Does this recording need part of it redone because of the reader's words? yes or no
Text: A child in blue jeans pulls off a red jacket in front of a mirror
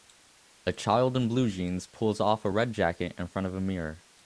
no